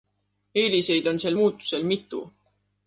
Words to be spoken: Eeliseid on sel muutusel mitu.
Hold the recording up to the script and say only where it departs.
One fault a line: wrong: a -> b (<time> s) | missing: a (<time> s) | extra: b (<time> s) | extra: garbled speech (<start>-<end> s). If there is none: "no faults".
no faults